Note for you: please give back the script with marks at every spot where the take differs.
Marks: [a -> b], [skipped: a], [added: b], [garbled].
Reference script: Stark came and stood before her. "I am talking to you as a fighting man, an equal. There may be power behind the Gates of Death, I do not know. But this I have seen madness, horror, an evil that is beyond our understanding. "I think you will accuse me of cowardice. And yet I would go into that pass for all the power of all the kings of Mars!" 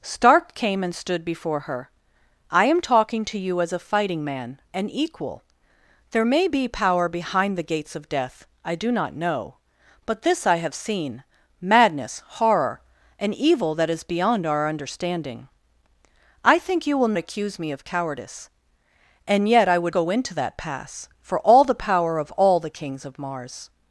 Stark came and stood before her. "I am talking to you as a fighting man, an equal. There may be power behind the Gates of Death, I do not know. But this I have seen madness, horror, an evil that is beyond our understanding. "I think you will accuse me of cowardice. And yet I would go into that pass for all the power of all the kings of Mars!"